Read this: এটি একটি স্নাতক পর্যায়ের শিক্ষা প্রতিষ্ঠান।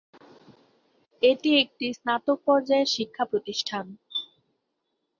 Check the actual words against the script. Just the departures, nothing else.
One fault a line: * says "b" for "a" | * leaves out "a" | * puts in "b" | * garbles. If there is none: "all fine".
all fine